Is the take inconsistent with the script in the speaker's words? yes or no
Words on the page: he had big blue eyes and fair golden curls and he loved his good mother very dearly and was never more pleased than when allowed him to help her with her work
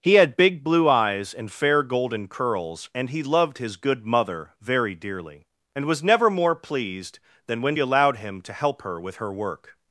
no